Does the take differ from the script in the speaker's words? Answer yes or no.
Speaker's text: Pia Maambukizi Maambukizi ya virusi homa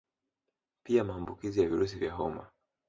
yes